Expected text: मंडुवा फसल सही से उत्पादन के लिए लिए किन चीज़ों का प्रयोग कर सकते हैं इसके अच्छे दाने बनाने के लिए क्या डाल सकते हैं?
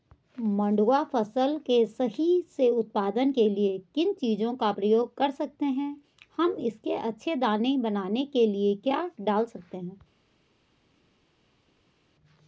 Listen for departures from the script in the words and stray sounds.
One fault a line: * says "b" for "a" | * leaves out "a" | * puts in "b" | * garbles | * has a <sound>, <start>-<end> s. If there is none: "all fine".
* puts in "के"
* leaves out "लिए"
* puts in "हम"